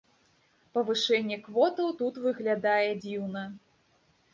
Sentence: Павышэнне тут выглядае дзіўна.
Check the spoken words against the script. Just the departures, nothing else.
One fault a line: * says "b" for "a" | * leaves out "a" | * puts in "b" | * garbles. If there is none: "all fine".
* puts in "квотаў"